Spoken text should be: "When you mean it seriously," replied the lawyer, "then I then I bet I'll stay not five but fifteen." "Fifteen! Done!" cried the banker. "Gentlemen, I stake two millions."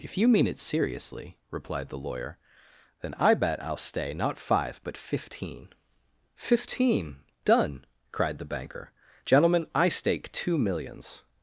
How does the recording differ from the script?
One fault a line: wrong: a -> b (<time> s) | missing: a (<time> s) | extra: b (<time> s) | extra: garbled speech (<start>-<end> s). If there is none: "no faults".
wrong: When -> If (0.0 s)
missing: then I (3.4 s)